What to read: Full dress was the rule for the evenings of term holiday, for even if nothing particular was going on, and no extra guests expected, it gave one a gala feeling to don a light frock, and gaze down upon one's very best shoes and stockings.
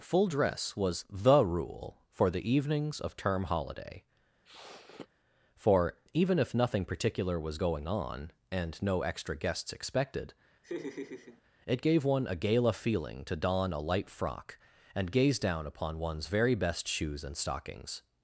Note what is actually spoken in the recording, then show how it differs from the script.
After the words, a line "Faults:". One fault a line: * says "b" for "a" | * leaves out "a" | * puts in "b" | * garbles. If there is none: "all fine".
Full dress was the rule for the evenings of term holiday, for even if nothing particular was going on, and no extra guests expected, it gave one a gala feeling to don a light frock, and gaze down upon one's very best shoes and stockings.
Faults:
all fine